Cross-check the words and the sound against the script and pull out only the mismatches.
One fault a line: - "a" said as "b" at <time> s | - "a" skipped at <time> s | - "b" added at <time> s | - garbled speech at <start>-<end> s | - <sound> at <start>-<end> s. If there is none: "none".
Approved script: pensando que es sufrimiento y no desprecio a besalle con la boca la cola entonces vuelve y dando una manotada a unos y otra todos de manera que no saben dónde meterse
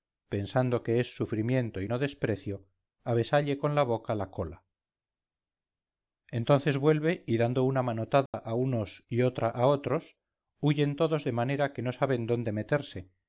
- dropout at 8.3-8.3 s
- "a otros huyen" added at 9.5 s